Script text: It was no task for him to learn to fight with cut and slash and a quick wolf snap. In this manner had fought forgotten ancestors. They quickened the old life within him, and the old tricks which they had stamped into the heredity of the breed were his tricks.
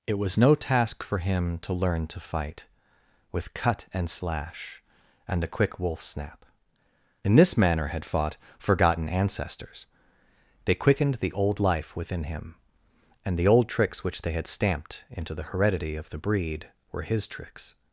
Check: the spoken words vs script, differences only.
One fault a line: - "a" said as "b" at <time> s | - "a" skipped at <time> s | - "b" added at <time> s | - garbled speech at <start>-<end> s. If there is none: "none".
none